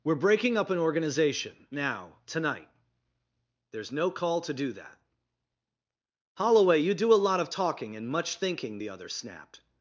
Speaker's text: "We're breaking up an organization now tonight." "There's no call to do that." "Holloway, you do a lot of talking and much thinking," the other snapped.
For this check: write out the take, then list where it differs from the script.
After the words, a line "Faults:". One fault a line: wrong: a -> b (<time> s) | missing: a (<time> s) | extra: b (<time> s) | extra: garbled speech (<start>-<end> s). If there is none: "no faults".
"We're breaking up an organization now tonight." "There's no call to do that." "Holloway, you do a lot of talking and much thinking," the other snapped.
Faults:
no faults